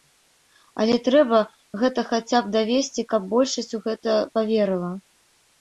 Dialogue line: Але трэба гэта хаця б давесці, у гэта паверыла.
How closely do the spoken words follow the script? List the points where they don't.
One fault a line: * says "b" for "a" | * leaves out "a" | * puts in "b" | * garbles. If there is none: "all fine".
* puts in "каб большасць"